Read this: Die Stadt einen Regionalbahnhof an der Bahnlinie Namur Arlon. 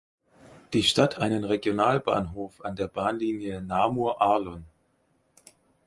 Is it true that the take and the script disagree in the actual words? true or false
false